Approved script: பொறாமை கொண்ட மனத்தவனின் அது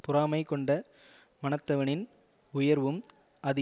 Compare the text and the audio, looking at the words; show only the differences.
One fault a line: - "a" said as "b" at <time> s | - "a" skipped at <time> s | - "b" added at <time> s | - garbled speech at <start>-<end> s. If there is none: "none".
- "உயர்வும்" added at 2.5 s